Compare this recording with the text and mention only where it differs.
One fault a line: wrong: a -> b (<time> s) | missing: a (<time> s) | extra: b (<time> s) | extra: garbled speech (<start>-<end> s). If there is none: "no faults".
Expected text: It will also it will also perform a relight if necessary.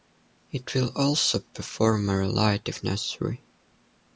missing: it will also (1.4 s)